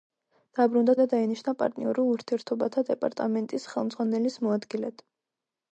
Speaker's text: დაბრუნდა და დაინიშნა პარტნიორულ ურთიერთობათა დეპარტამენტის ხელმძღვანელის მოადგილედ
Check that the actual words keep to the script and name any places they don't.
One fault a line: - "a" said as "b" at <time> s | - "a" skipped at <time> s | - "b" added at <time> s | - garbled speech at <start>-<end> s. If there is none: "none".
none